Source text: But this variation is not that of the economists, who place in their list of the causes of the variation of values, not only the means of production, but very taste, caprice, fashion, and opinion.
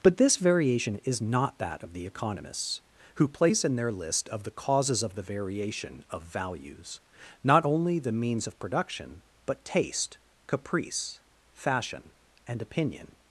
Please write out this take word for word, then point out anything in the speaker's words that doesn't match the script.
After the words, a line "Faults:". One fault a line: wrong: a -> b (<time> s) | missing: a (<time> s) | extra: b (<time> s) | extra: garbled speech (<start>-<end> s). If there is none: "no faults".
But this variation is not that of the economists, who place in their list of the causes of the variation of values, not only the means of production, but taste, caprice, fashion, and opinion.
Faults:
missing: very (9.7 s)